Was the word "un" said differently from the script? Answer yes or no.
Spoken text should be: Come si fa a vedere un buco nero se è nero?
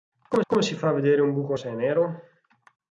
no